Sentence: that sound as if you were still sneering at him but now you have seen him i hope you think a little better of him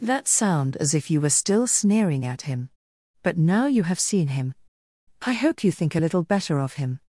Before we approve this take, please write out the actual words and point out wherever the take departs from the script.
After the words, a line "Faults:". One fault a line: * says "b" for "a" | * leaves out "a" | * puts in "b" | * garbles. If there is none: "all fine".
that sound as if you were still sneering at him but now you have seen him i hope you think a little better of him
Faults:
all fine